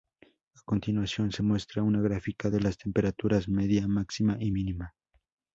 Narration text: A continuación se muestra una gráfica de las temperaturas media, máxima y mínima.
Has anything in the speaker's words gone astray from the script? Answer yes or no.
no